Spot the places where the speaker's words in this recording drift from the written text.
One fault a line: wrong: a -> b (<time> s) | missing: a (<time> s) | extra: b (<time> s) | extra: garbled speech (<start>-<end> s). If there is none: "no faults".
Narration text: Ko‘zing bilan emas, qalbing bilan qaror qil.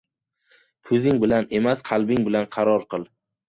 no faults